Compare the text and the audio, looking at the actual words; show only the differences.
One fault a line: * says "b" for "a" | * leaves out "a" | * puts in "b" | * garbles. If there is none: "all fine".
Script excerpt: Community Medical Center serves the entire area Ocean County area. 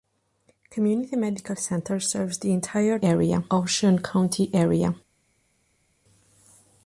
all fine